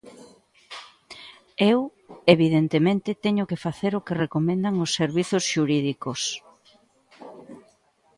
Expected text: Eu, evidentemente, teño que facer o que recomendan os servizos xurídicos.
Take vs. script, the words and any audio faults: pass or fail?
pass